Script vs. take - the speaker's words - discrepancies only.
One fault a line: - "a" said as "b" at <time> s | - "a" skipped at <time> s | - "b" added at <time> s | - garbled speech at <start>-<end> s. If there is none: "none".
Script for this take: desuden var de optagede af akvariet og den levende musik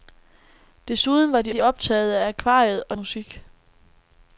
- "de" added at 1.5 s
- "den levende" skipped at 3.0 s